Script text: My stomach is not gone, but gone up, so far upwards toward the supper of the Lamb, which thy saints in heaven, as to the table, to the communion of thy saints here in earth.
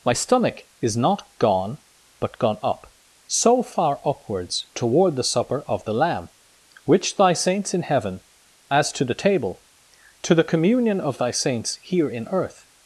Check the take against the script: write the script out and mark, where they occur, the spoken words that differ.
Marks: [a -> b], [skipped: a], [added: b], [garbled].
My stomach is not gone, but gone up, so far upwards toward the supper of the Lamb, which thy saints in heaven, as to the table, to the communion of thy saints here in earth.